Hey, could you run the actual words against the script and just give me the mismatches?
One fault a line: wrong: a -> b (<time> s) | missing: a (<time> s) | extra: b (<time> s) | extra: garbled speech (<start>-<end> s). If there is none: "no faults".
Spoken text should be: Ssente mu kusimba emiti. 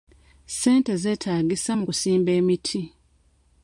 extra: zeetaagisa (1.0 s)